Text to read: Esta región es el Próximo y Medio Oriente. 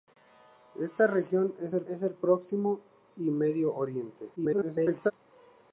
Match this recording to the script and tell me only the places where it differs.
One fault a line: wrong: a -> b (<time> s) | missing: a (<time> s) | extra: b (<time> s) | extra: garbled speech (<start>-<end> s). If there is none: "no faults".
extra: es el (1.9 s)
extra: garbled speech (4.4-5.1 s)